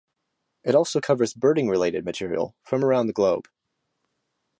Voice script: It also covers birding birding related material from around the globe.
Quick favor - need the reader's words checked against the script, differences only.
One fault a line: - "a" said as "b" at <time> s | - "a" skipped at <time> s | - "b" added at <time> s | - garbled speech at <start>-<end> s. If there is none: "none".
- "birding" skipped at 1.7 s